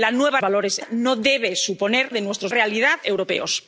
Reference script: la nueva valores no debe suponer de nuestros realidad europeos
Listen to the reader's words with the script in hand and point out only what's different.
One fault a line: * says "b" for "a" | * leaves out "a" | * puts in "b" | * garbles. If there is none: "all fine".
all fine